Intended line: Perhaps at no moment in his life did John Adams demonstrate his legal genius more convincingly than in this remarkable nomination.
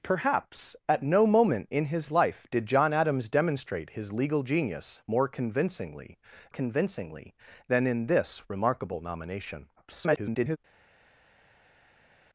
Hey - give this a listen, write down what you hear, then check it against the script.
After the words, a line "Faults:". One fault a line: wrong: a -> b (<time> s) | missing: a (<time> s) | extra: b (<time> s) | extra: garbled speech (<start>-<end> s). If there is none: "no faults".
Perhaps at no moment in his life did John Adams demonstrate his legal genius more convincingly convincingly than in this remarkable nomination. [garbled]
Faults:
extra: convincingly (6.5 s)
extra: garbled speech (9.8-10.6 s)